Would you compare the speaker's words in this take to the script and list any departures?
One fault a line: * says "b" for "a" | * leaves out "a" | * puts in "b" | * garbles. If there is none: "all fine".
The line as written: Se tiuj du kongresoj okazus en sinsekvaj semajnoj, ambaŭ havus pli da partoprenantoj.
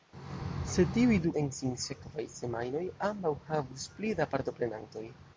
* leaves out "kongresoj okazus"